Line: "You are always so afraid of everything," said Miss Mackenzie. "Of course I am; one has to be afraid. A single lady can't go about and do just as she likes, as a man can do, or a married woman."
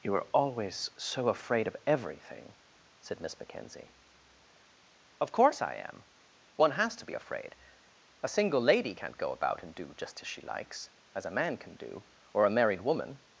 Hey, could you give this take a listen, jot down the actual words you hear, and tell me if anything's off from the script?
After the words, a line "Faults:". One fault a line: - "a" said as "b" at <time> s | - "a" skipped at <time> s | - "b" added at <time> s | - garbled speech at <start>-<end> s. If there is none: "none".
"You are always so afraid of everything," said Miss Mackenzie. "Of course I am; one has to be afraid. A single lady can't go about and do just as she likes, as a man can do, or a married woman."
Faults:
none